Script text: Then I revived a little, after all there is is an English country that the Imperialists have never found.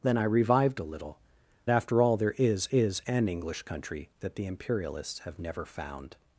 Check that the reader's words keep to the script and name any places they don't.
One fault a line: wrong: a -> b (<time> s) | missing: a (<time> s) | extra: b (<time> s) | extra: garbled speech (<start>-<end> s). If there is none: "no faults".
no faults